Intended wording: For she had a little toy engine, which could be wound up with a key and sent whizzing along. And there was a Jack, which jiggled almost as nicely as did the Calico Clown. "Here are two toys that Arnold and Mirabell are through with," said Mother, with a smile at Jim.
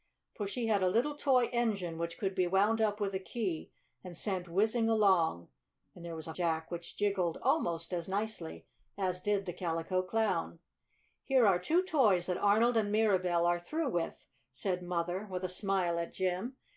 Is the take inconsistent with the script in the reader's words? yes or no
no